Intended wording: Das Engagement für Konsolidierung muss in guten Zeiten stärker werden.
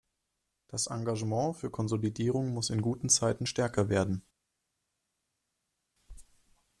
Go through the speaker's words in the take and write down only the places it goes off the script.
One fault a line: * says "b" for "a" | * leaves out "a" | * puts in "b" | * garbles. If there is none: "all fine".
all fine